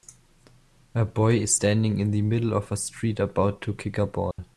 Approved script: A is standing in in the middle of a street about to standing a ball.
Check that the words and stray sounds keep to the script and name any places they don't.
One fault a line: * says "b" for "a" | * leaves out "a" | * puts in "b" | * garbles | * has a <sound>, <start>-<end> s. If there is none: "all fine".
* puts in "boy"
* leaves out "in"
* says "kick" for "standing"
* has a dropout, 4.3-4.4 s